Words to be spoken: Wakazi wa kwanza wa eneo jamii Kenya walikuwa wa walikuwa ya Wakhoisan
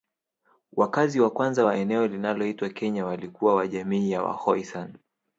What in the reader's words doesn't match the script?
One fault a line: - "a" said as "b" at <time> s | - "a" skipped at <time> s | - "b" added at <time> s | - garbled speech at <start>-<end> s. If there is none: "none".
- "jamii" said as "linaloitwa" at 2.1 s
- "walikuwa" said as "jamii" at 3.7 s